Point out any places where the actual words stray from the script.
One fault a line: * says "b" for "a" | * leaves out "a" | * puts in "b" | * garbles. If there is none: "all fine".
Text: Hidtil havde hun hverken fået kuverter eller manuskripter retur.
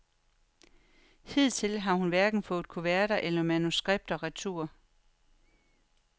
* says "har" for "havde"